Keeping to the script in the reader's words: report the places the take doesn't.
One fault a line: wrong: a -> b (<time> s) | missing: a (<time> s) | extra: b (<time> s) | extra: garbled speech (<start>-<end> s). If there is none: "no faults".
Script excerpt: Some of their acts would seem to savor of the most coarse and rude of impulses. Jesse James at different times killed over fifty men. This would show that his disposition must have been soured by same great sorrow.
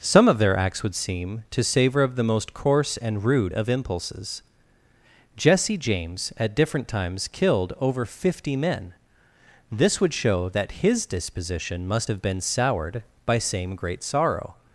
no faults